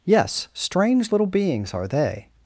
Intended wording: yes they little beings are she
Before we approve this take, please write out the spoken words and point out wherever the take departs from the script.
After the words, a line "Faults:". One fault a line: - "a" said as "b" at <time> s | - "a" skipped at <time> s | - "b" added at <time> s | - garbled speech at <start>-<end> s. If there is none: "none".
yes strange little beings are they
Faults:
- "they" said as "strange" at 0.5 s
- "she" said as "they" at 1.9 s